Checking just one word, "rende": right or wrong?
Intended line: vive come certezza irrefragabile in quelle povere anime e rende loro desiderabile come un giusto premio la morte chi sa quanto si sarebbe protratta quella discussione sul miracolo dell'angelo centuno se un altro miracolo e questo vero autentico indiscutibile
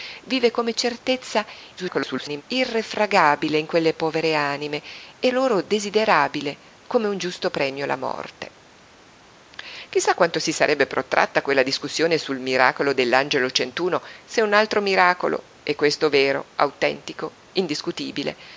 wrong